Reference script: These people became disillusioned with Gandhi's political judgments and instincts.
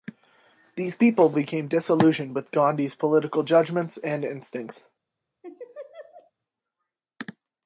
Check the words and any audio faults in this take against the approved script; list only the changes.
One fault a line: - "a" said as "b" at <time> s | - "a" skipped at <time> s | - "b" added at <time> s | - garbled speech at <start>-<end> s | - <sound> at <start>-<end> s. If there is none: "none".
- laugh at 5.4-6.3 s